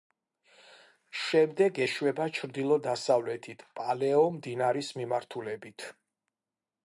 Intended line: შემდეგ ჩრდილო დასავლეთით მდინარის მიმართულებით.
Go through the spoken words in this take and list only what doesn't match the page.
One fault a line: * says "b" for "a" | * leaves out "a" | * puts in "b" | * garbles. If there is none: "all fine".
* puts in "ეშვება"
* puts in "პალეო"